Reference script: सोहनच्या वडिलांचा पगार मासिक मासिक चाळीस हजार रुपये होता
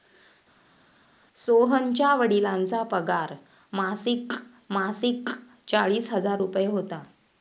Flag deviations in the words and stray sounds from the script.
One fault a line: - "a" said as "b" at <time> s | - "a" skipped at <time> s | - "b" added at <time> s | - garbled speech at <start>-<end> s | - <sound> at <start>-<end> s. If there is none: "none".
none